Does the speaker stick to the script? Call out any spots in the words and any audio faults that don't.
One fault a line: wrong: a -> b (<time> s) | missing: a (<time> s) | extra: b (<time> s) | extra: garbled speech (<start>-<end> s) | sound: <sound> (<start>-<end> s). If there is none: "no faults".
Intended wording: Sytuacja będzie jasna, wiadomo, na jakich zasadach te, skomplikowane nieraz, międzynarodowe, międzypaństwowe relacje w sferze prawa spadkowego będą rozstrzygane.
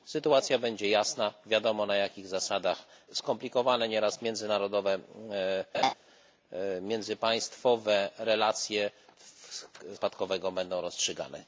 missing: te (2.8 s)
sound: laugh (5.7-5.9 s)
missing: sferze prawa (10.0 s)